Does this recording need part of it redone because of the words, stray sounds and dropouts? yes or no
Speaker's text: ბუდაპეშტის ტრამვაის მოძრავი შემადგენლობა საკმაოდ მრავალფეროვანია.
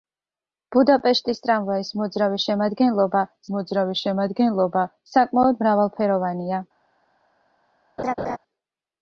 yes